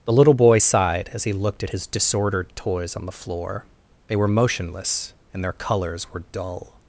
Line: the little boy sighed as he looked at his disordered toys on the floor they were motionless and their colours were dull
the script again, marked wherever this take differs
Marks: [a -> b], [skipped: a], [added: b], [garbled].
the little boy sighed as he looked at his disordered toys on the floor they were motionless and their colours were dull